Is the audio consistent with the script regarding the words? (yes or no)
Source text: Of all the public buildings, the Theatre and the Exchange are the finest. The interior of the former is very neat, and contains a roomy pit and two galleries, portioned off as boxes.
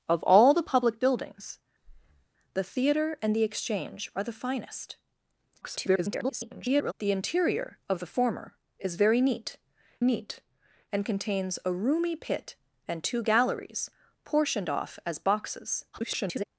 no